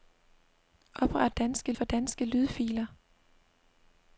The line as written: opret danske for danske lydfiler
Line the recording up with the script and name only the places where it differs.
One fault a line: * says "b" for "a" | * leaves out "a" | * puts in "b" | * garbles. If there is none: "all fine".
all fine